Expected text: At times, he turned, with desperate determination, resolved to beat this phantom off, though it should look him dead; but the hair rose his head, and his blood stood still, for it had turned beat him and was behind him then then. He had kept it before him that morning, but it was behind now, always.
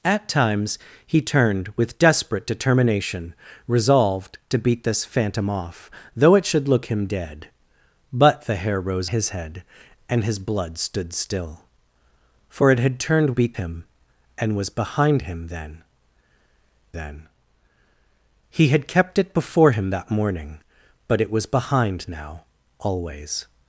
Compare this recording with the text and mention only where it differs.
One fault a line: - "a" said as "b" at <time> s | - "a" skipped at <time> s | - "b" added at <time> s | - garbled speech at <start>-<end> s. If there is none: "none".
none